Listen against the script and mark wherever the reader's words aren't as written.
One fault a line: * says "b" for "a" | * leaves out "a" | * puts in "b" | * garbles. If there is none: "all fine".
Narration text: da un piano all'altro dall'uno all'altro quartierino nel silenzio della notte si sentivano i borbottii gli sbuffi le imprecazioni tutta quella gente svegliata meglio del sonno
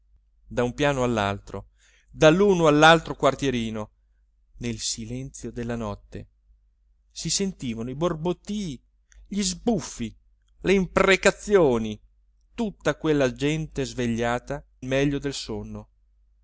all fine